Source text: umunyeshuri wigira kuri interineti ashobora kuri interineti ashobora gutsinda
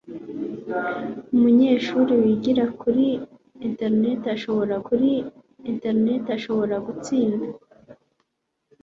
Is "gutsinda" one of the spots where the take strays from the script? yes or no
no